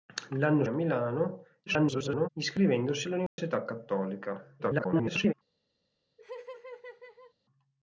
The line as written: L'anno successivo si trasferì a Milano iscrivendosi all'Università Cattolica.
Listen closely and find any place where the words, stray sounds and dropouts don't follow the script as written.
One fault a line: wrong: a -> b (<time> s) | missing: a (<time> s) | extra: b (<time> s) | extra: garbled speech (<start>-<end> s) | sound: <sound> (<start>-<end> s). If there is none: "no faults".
missing: successivo si trasferì (0.6 s)
extra: garbled speech (1.7-2.3 s)
sound: dropout (3.3-3.4 s)
extra: garbled speech (4.6-5.3 s)
sound: laugh (6.2-7.3 s)